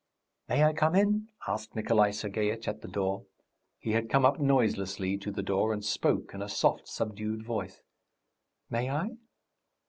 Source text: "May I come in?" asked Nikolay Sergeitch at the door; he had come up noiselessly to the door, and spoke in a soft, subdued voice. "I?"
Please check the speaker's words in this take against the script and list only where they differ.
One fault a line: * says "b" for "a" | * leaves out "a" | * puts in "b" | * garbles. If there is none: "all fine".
* puts in "May"